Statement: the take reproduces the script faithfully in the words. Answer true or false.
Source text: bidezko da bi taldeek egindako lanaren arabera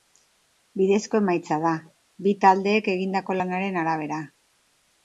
false